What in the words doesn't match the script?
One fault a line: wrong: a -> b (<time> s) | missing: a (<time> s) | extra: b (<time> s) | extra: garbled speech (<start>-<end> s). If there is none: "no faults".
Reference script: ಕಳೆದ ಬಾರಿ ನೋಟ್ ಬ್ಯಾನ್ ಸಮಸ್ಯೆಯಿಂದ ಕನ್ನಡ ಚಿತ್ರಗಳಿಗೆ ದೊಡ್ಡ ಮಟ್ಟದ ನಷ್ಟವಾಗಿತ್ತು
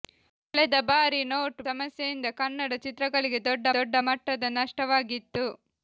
missing: ಬ್ಯಾನ್ (1.6 s)
extra: ದೊಡ್ಡ (3.8 s)